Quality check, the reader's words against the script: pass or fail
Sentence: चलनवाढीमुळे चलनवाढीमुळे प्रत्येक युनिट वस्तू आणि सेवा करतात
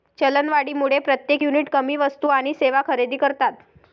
fail